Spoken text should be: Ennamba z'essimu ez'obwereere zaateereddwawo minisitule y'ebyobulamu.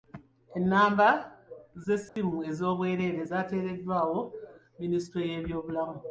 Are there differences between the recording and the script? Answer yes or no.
no